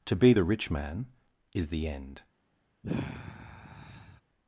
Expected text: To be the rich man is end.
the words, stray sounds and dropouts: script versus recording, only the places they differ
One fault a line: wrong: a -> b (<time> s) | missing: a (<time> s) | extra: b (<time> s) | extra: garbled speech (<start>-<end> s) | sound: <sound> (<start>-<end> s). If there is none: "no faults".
extra: the (1.7 s)
sound: sigh (2.8-4.2 s)